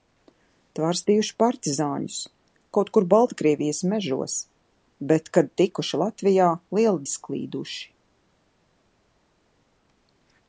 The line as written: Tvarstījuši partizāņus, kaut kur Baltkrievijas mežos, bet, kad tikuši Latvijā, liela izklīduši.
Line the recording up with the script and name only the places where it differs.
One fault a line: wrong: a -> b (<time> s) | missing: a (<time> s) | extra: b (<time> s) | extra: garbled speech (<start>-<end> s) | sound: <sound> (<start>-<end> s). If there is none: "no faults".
no faults